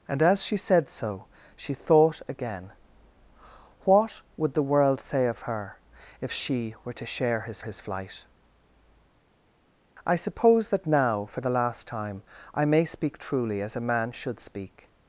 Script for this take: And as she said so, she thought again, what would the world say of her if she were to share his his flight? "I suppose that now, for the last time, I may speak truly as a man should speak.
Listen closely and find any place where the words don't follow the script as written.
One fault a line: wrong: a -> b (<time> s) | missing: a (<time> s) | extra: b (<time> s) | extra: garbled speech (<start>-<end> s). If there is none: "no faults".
no faults